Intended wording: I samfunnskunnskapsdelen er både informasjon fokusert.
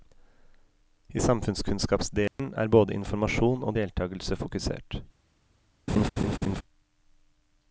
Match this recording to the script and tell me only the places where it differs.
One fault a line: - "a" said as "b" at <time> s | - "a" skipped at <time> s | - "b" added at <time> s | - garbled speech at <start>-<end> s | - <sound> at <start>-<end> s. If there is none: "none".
- dropout at 2.3-2.4 s
- "og deltagelse" added at 3.6 s
- laugh at 5.9-6.6 s